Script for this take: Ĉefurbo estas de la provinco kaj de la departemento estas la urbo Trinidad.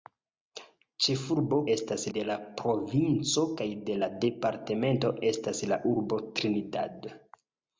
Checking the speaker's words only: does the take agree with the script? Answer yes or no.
yes